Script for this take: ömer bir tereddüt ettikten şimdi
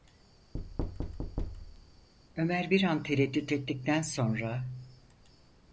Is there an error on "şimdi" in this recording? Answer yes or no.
yes